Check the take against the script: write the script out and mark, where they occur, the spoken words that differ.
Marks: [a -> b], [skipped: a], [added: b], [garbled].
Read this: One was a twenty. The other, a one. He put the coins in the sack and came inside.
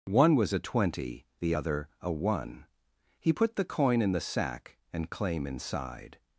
One was a twenty. The other, a one. He put the [coins -> coin] in the sack and [came -> claim] inside.